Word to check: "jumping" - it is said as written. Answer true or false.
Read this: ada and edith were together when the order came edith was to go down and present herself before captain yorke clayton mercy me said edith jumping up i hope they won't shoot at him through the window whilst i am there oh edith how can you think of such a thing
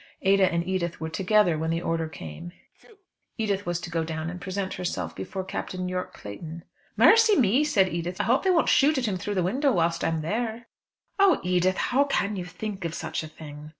false